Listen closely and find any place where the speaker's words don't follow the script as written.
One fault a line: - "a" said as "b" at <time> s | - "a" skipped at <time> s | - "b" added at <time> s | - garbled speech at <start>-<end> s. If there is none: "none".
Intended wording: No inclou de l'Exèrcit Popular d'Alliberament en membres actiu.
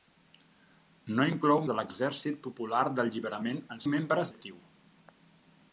none